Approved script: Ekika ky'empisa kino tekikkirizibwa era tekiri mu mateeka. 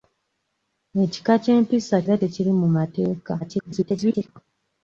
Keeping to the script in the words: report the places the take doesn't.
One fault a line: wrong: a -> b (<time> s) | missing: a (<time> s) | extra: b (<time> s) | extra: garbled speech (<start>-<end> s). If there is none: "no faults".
missing: kino tekikkirizibwa (2.0 s)
extra: garbled speech (3.4-4.3 s)